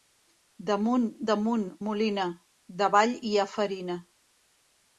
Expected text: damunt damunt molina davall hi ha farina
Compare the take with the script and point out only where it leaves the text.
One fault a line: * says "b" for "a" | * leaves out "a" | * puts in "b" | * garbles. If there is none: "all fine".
all fine